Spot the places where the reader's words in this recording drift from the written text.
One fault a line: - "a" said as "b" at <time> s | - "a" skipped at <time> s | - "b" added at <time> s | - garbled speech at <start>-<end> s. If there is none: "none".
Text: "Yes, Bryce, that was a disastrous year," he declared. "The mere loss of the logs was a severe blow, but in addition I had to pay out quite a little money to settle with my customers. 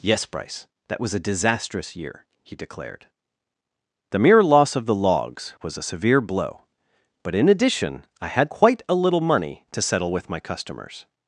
- "to pay out" skipped at 8.5 s